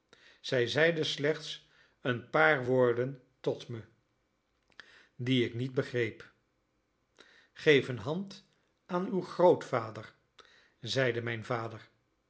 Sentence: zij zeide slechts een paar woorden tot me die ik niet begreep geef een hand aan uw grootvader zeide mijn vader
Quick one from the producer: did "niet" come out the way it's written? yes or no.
yes